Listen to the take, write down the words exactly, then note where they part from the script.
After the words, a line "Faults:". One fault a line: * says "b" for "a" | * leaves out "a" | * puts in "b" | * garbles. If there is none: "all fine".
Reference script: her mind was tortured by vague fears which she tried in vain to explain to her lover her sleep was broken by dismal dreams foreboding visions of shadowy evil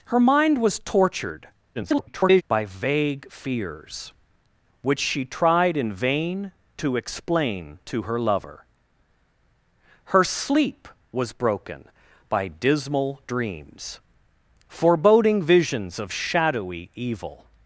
her mind was tortured [garbled] by vague fears which she tried in vain to explain to her lover her sleep was broken by dismal dreams foreboding visions of shadowy evil
Faults:
* garbles